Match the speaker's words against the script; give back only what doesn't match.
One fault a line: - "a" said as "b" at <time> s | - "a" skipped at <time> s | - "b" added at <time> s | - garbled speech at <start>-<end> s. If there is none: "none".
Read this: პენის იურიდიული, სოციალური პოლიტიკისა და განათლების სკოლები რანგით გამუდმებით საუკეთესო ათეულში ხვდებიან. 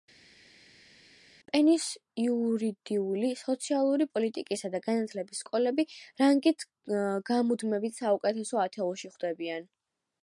none